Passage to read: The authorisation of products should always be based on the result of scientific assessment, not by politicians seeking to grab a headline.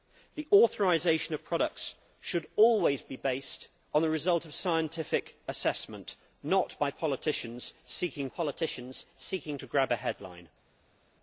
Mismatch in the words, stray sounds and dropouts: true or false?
true